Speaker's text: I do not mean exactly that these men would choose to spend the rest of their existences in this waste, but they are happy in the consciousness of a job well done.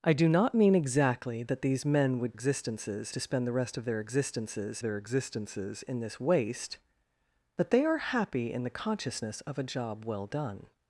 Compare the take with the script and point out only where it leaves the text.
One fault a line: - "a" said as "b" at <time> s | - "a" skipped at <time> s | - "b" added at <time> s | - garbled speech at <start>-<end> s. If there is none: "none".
- "choose" said as "existences" at 2.3 s
- "their existences" added at 4.8 s